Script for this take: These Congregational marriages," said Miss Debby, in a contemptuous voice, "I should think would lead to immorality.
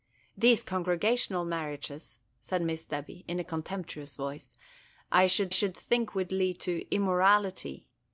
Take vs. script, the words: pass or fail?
fail